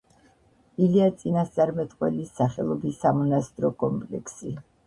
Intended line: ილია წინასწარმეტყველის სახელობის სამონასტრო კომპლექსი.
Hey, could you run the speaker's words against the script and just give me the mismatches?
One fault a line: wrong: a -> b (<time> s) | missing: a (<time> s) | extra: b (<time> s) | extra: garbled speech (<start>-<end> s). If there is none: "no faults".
no faults